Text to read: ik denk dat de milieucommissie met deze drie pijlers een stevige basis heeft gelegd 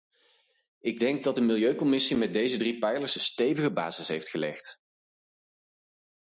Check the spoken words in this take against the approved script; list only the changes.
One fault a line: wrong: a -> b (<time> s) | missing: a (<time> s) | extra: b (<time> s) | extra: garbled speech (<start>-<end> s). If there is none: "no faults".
no faults